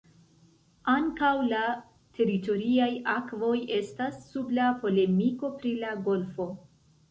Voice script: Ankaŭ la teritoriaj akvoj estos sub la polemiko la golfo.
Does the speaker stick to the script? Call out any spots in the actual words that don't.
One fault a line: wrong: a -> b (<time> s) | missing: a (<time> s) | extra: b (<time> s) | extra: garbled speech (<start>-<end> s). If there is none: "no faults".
wrong: estos -> estas (3.8 s)
extra: pri (5.6 s)